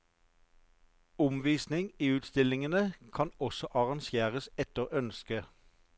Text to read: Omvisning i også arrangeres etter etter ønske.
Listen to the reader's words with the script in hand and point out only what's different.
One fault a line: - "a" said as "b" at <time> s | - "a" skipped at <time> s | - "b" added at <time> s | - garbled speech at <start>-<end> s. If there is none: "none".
- "utstillingene kan" added at 2.1 s
- "etter" skipped at 4.9 s